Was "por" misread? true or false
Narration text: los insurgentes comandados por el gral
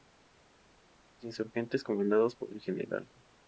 false